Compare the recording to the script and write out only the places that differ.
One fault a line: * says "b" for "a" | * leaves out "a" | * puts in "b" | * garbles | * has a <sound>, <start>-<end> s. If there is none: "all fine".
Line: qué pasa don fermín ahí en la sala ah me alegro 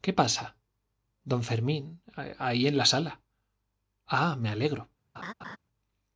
* has a laugh, 5.1-5.6 s